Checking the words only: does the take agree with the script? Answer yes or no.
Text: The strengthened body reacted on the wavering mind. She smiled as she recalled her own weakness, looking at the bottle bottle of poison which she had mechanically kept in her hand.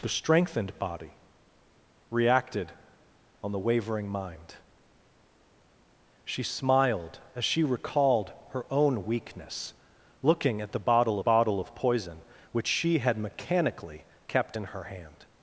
yes